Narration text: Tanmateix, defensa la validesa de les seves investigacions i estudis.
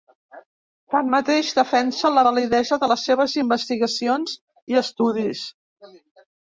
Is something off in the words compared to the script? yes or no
no